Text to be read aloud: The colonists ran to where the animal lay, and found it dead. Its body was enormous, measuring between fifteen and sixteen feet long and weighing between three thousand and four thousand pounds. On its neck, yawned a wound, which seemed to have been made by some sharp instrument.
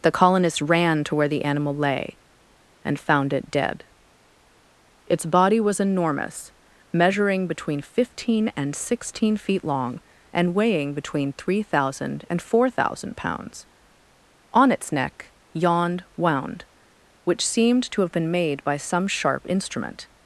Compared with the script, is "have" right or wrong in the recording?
right